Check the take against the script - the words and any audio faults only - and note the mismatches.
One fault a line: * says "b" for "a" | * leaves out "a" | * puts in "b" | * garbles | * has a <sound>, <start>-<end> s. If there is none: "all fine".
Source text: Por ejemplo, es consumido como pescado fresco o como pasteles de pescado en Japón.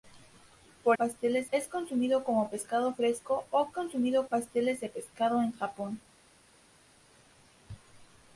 * says "pasteles" for "ejemplo"
* says "consumido" for "como"